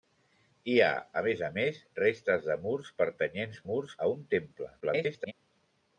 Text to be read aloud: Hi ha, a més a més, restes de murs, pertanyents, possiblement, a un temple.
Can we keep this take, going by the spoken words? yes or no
no